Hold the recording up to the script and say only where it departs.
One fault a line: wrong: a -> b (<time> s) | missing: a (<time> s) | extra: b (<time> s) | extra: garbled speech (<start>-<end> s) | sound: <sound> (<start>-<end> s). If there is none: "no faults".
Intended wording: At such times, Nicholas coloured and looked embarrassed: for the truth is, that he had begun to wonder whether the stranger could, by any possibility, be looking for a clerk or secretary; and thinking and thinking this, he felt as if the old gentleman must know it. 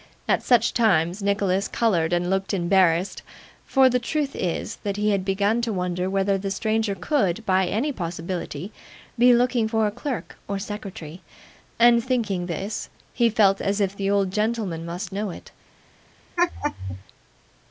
missing: and thinking (12.5 s)
sound: laugh (16.4-17.0 s)